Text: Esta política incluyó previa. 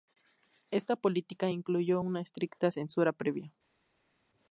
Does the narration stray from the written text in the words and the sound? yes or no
yes